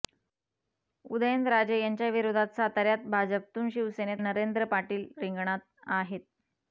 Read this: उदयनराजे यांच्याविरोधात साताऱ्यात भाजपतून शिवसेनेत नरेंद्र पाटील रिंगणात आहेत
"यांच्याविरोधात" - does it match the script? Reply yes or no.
yes